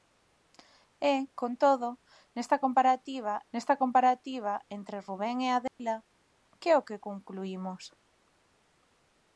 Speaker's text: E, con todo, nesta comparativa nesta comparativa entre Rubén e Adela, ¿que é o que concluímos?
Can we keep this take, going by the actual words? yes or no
yes